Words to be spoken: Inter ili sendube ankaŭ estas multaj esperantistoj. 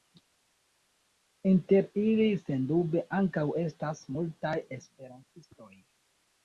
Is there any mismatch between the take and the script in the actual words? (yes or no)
no